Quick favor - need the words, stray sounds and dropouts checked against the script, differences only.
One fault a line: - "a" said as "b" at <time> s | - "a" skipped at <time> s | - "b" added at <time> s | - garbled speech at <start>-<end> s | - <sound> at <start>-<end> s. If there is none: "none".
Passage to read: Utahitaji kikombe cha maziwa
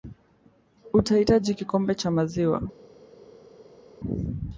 none